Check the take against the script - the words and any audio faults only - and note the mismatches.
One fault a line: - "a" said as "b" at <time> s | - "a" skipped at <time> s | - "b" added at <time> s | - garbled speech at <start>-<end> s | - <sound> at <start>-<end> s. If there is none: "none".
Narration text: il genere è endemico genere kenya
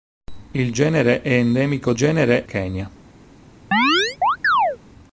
- chirp at 3.7-4.8 s